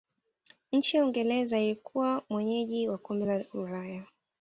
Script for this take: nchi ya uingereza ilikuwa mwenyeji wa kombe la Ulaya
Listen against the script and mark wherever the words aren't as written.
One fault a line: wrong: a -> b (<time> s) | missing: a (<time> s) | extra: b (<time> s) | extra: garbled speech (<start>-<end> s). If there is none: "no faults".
no faults